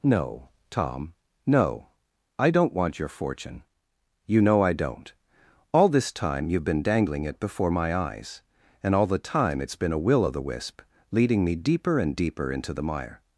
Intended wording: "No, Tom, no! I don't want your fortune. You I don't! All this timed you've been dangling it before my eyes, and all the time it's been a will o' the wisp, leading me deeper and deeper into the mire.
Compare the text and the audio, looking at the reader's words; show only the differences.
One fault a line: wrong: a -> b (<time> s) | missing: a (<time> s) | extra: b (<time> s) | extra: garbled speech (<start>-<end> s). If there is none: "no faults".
extra: know (4.4 s)
wrong: timed -> time (6.1 s)